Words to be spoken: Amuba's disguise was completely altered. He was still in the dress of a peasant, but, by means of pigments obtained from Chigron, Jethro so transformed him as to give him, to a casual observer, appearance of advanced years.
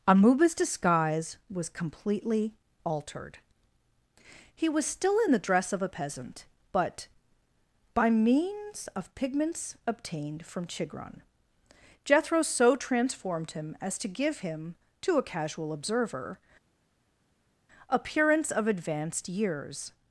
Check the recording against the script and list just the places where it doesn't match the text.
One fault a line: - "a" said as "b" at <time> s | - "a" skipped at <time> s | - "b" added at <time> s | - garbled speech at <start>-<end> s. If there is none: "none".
none